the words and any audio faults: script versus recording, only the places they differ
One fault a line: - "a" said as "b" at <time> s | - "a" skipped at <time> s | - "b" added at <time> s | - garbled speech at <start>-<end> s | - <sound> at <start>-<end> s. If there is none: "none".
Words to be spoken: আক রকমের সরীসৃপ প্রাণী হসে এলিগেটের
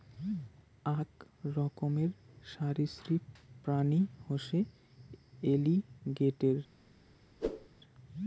- whoosh at 7.4-7.7 s